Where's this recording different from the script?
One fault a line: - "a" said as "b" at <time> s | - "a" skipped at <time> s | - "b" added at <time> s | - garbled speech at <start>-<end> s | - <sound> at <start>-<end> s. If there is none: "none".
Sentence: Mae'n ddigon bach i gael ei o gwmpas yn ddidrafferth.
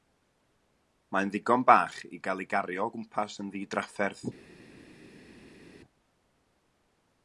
- "gario" added at 2.5 s